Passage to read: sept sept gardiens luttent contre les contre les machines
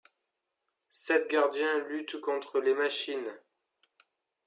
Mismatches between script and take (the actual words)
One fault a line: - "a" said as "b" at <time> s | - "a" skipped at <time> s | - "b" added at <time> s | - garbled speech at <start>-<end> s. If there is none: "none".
- "sept" skipped at 1.3 s
- "contre les" skipped at 2.7 s